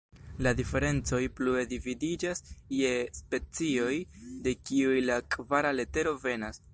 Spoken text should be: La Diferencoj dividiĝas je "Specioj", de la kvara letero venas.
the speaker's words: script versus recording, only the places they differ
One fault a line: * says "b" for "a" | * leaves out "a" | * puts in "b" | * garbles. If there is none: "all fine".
* puts in "plue"
* puts in "kiuj"